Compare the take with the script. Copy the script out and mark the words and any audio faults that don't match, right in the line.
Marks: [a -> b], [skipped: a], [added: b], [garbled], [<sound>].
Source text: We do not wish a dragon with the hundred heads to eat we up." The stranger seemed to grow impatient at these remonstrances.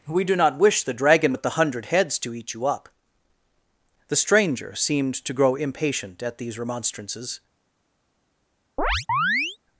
We do not wish [a -> the] dragon with the hundred heads to eat [we -> you] up." The stranger seemed to grow impatient at these remonstrances. [chirp]